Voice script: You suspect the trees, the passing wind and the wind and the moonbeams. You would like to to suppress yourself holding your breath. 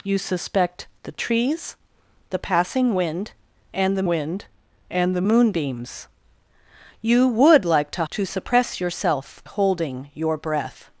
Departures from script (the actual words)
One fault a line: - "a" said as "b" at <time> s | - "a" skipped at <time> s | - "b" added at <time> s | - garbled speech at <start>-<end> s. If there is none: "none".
none